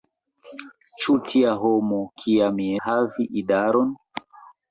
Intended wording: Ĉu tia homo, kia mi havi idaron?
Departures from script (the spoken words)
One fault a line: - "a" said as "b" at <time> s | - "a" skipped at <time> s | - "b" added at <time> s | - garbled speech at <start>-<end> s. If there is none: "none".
none